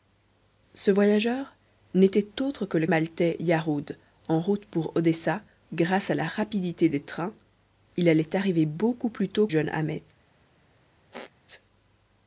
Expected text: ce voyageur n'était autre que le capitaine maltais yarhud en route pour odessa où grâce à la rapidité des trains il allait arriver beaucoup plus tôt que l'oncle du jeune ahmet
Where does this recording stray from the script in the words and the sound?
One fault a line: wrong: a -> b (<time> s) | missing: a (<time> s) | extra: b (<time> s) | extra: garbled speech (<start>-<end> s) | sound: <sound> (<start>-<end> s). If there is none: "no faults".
missing: capitaine (2.9 s)
missing: où (5.4 s)
missing: que l'oncle du (9.5 s)
sound: squeak (11.1-11.3 s)